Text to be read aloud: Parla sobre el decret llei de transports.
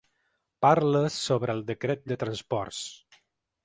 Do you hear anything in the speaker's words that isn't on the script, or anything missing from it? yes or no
yes